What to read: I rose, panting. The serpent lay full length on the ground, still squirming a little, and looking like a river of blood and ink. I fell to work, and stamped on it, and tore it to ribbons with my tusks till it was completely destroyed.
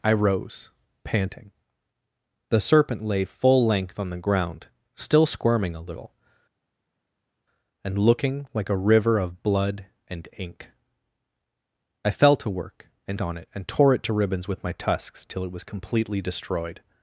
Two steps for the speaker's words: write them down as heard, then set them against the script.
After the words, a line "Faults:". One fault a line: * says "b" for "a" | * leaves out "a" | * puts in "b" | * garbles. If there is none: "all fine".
I rose, panting. The serpent lay full length on the ground, still squirming a little, and looking like a river of blood and ink. I fell to work, and on it, and tore it to ribbons with my tusks till it was completely destroyed.
Faults:
* leaves out "stamped"